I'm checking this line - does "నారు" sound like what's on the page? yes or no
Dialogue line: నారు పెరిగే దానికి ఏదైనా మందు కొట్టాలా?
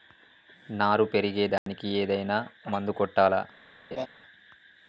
yes